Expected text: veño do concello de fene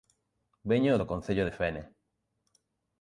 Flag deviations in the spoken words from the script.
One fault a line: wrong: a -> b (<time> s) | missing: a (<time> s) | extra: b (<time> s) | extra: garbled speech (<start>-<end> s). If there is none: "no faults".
no faults